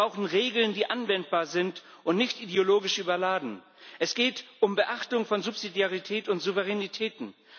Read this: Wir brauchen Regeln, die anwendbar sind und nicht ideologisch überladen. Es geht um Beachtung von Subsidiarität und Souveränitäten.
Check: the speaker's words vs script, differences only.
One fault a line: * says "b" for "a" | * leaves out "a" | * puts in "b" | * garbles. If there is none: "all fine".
all fine